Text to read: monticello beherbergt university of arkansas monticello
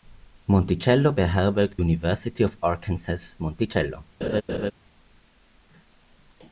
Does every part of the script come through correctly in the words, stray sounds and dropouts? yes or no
no